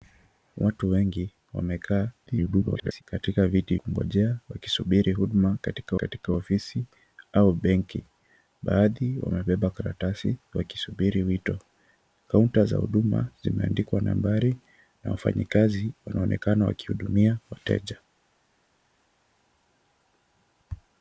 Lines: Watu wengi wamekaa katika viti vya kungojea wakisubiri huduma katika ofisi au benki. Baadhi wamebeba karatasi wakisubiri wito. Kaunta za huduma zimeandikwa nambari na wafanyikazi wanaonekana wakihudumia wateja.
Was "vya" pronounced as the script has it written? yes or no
no